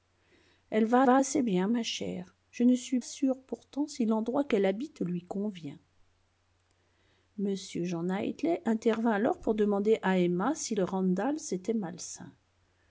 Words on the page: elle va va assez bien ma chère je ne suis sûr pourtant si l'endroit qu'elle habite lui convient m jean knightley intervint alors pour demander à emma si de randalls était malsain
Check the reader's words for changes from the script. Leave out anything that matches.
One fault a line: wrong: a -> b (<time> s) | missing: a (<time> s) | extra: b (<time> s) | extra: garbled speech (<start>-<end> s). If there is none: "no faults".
no faults